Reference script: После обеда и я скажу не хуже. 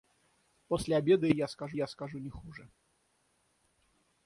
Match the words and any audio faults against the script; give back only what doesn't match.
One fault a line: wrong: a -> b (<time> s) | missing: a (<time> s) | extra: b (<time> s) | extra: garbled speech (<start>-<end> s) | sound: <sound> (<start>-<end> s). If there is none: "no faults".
extra: я скажу (1.7 s)